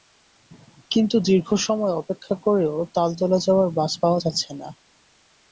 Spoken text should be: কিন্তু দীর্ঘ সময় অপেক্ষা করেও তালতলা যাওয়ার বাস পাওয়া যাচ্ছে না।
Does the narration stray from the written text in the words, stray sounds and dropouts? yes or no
no